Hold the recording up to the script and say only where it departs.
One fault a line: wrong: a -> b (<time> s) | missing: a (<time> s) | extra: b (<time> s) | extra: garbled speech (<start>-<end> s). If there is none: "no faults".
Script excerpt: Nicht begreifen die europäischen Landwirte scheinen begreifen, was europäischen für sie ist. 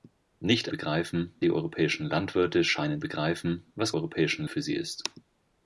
no faults